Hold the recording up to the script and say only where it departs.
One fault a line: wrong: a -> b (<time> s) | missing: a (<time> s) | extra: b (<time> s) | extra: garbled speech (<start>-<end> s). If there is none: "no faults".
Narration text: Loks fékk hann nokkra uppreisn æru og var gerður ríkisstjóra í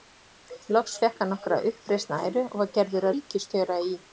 no faults